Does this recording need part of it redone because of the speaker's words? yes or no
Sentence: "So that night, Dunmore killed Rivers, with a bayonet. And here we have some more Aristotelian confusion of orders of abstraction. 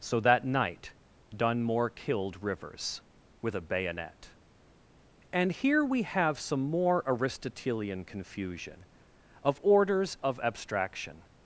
no